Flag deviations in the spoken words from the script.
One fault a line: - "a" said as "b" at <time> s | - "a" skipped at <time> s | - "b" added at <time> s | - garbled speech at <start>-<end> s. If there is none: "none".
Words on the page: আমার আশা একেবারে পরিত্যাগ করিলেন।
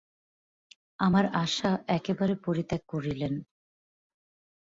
none